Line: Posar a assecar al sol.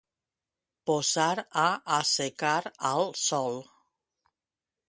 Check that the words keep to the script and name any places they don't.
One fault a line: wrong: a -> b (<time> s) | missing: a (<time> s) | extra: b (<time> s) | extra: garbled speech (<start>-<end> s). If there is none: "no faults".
no faults